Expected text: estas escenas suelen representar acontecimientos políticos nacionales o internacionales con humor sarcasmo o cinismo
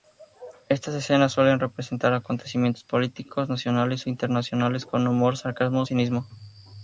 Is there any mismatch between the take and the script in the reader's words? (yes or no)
no